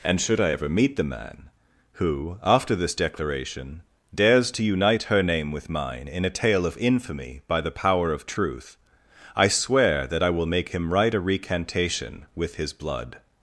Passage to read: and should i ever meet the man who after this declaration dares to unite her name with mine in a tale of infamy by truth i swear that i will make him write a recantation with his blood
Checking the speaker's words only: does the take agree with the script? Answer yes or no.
no